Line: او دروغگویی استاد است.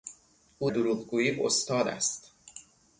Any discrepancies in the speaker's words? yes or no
no